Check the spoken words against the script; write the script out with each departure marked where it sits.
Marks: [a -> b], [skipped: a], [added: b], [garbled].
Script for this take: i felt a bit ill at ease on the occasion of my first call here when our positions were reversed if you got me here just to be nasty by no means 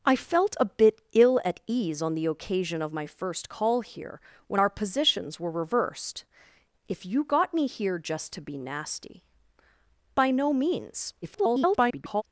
i felt a bit ill at ease on the occasion of my first call here when our positions were reversed if you got me here just to be nasty by no means [garbled]